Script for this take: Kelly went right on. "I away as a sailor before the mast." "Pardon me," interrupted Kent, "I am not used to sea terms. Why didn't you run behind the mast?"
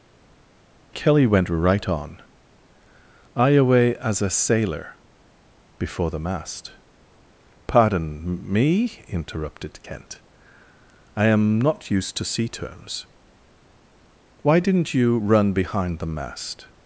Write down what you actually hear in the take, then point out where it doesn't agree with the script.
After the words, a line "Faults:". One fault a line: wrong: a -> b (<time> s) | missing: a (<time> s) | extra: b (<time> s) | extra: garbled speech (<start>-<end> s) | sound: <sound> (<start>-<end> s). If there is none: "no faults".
Kelly went right on. "I away as a sailor before the mast." "Pardon me," interrupted Kent, "I am not used to sea terms. Why didn't you run behind the mast?"
Faults:
no faults